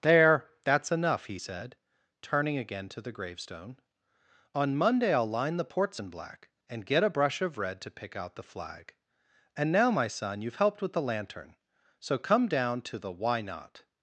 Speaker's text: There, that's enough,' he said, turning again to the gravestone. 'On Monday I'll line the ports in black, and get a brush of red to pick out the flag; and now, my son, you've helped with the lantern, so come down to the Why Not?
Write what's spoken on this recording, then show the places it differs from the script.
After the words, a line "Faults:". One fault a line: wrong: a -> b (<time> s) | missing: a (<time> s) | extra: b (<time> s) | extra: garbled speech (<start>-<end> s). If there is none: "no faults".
There, that's enough,' he said, turning again to the gravestone. 'On Monday I'll line the ports in black, and get a brush of red to pick out the flag; and now, my son, you've helped with the lantern, so come down to the Why Not?
Faults:
no faults